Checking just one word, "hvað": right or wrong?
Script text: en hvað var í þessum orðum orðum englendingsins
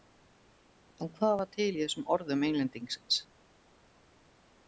right